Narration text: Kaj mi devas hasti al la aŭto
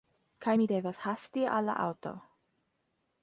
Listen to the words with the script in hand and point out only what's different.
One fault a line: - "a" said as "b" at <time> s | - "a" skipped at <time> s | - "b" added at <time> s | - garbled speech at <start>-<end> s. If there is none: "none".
none